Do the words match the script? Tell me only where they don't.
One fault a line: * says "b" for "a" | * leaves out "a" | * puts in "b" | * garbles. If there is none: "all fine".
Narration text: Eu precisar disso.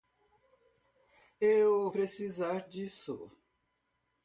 all fine